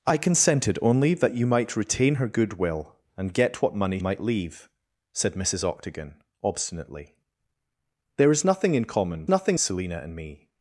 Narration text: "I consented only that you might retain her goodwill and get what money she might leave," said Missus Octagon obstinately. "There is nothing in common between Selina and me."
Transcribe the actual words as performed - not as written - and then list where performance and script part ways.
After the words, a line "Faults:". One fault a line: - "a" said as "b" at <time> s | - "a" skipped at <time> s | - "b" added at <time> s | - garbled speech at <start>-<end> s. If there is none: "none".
"I consented only that you might retain her goodwill and get what money might leave," said Missus Octagon obstinately. "There is nothing in common nothing Selina and me."
Faults:
- "she" skipped at 4.0 s
- "between" said as "nothing" at 9.3 s